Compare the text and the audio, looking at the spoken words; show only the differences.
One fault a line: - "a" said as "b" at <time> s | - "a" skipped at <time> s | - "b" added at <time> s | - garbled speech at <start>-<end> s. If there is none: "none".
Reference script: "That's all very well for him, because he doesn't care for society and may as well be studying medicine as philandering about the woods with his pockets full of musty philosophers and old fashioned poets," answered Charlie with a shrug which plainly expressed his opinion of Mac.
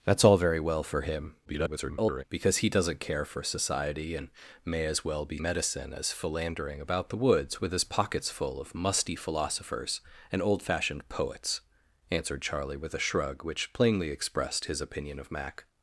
- garbled speech at 1.4-2.2 s
- "studying" skipped at 5.4 s